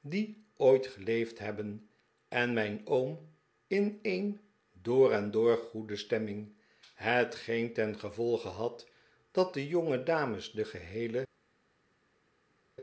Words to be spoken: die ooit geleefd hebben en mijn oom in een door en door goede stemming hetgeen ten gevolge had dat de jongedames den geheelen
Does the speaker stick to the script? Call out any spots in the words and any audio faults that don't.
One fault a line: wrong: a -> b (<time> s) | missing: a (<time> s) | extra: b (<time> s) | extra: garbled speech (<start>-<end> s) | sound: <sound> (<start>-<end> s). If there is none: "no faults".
no faults